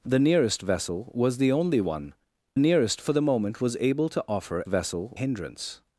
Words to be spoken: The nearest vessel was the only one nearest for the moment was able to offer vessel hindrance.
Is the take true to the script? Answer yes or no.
yes